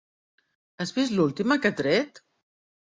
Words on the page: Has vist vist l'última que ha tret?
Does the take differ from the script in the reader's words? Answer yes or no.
yes